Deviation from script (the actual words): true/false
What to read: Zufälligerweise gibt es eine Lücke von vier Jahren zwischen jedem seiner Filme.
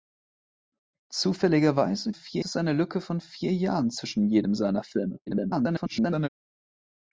true